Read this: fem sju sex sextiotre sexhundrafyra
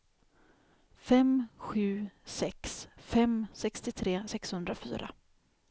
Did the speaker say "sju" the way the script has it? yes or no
yes